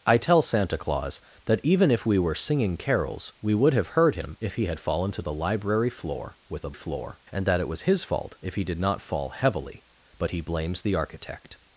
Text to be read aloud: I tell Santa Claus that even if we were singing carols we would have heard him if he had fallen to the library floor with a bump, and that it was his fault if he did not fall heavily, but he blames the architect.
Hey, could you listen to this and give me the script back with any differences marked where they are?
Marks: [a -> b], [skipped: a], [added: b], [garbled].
I tell Santa Claus that even if we were singing carols we would have heard him if he had fallen to the library floor with a [bump, -> floor] and that it was his fault if he did not fall heavily, but he blames the architect.